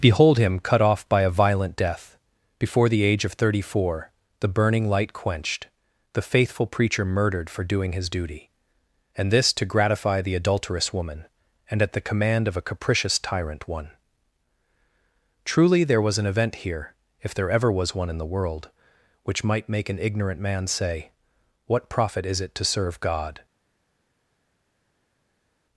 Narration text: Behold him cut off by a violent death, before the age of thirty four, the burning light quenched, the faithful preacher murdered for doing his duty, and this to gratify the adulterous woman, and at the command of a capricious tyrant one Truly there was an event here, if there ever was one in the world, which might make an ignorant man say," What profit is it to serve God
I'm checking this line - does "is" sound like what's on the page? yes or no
yes